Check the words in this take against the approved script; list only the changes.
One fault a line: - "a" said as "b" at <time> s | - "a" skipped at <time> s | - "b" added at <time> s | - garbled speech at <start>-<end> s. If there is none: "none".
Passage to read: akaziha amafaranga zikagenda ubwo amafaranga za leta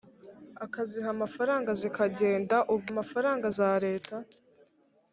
none